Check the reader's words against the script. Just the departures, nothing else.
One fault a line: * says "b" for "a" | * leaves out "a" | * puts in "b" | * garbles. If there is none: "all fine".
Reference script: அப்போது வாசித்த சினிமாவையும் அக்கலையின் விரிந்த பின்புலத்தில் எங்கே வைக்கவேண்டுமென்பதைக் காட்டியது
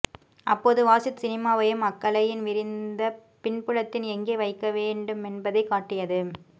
all fine